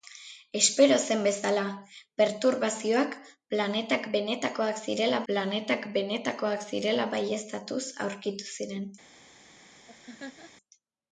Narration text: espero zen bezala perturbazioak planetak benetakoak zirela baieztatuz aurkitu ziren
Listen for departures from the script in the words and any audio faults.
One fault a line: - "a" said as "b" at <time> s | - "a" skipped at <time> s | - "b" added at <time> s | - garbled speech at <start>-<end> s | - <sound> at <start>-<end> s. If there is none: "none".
- "planetak benetakoak zirela" added at 5.3 s
- laugh at 9.9-10.5 s